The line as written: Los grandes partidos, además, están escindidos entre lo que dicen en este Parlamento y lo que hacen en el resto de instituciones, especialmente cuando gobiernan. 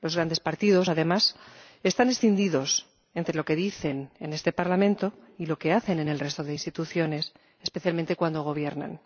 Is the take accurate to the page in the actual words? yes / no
yes